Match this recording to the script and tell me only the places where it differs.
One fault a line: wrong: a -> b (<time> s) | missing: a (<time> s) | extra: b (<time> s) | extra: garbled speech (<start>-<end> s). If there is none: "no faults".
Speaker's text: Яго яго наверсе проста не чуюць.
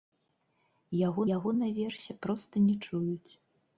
no faults